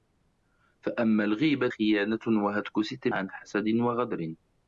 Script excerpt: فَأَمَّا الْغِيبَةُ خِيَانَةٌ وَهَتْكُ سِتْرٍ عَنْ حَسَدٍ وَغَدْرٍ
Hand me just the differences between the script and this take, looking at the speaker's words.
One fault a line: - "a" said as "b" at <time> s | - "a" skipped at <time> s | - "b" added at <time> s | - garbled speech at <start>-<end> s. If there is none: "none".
none